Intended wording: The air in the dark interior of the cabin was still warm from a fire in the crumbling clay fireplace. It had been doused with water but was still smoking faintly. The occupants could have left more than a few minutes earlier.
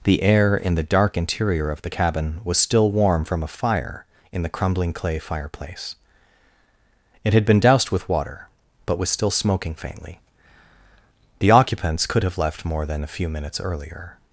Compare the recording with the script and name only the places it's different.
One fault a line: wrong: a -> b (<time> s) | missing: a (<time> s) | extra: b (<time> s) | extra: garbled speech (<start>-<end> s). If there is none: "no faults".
no faults